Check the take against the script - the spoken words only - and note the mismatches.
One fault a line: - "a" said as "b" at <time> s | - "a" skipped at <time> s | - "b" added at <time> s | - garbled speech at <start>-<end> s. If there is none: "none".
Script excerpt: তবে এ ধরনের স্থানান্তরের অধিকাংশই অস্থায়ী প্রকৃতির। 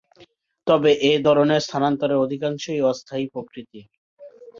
none